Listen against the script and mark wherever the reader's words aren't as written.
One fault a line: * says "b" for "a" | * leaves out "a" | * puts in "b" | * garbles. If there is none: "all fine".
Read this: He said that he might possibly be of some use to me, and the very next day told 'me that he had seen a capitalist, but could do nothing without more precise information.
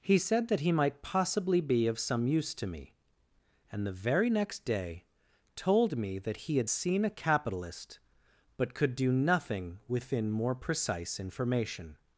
* says "within" for "without"